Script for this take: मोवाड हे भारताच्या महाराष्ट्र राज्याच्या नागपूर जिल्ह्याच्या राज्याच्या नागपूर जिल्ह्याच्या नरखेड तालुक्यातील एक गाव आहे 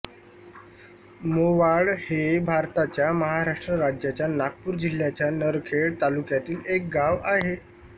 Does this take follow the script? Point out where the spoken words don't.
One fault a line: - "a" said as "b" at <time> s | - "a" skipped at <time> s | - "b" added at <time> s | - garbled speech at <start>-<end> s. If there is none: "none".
- "राज्याच्या नागपूर जिल्ह्याच्या" skipped at 5.3 s